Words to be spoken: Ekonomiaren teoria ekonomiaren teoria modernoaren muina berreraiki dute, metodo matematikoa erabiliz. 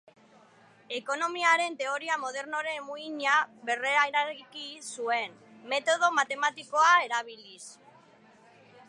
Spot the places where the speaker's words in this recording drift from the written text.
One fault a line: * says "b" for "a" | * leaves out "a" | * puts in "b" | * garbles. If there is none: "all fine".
* leaves out "ekonomiaren teoria"
* says "zuen" for "dute"